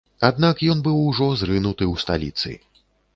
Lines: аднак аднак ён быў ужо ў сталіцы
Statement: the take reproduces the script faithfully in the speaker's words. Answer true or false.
false